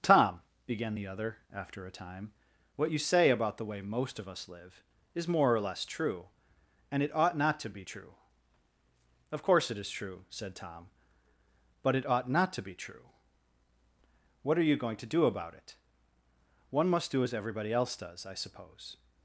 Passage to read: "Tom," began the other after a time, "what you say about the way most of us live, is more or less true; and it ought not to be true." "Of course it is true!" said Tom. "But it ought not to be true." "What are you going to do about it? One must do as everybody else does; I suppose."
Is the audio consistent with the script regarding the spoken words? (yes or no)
yes